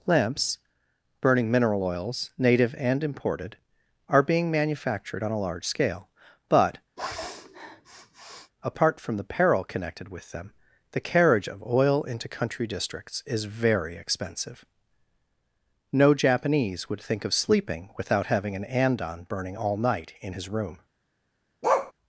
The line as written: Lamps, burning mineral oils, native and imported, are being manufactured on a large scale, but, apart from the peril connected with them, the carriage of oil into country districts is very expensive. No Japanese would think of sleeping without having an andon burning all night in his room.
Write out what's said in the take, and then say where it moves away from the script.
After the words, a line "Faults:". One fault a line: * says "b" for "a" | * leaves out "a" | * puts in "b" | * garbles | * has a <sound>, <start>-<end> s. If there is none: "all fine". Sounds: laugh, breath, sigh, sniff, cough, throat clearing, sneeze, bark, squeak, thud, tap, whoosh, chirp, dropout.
Lamps, burning mineral oils, native and imported, are being manufactured on a large scale, but, apart from the peril connected with them, the carriage of oil into country districts is very expensive. No Japanese would think of sleeping without having an andon burning all night in his room.
Faults:
* has a sniff, 7.0-8.5 s
* has a bark, 21.6-21.9 s